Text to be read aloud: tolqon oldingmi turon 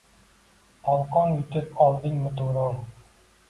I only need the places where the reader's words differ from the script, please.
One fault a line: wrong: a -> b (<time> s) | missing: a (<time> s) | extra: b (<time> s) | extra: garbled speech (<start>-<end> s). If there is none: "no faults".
extra: yutib (1.4 s)